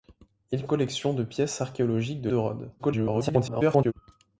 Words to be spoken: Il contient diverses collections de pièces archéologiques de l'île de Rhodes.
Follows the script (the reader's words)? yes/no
no